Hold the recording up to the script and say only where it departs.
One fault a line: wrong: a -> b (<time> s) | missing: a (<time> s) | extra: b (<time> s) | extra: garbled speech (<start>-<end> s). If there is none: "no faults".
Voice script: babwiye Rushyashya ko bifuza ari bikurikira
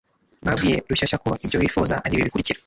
extra: ibyo (1.4 s)
extra: ibi (2.1 s)